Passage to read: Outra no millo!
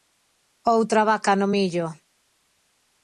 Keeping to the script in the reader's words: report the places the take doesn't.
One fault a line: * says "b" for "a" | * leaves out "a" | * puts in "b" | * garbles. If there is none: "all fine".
* puts in "vaca"